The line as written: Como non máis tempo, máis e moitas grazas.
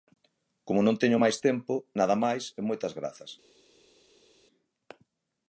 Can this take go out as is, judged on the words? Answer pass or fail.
fail